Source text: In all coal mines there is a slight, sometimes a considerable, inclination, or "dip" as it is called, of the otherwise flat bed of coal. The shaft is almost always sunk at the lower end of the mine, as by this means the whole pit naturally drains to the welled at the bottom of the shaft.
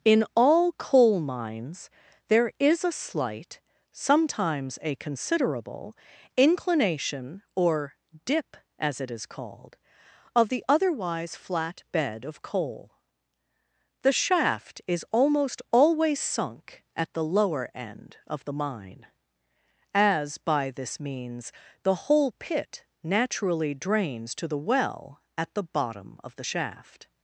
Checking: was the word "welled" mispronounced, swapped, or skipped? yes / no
yes